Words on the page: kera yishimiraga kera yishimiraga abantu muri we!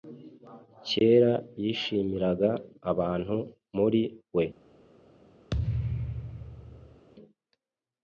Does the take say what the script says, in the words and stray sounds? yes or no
no